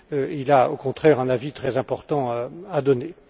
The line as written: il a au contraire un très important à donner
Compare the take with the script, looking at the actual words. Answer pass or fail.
fail